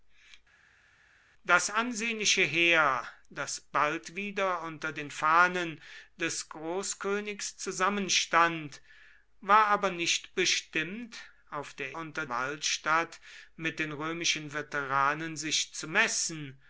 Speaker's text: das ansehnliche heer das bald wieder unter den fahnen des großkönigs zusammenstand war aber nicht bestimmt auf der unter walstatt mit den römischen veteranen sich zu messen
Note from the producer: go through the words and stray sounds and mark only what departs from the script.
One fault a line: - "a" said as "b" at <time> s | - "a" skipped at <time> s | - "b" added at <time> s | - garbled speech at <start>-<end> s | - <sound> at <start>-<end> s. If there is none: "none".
none